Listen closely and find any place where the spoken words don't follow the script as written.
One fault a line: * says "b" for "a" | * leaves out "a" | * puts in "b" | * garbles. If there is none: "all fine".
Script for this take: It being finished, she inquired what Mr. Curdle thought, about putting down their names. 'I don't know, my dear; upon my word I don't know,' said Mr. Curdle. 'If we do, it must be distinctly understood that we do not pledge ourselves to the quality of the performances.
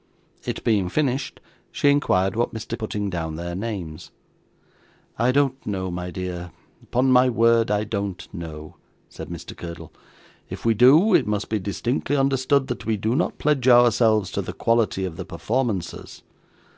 * leaves out "Curdle thought about"